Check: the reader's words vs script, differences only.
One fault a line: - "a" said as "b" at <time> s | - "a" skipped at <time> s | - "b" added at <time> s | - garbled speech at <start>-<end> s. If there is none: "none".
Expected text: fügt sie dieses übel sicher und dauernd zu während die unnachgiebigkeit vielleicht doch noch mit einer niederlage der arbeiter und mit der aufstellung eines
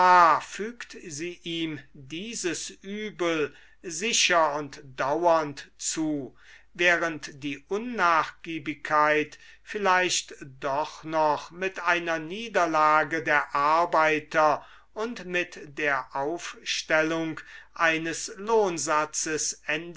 - "ihm" added at 1.4 s